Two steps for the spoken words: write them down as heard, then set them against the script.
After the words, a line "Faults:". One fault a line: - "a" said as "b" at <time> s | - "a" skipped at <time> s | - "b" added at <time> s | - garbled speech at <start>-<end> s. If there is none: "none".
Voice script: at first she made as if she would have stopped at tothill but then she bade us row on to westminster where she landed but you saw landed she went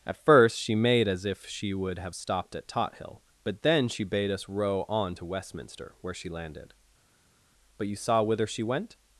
at first she made as if she would have stopped at tothill but then she bade us row on to westminster where she landed but you saw whither she went
Faults:
- "landed" said as "whither" at 8.2 s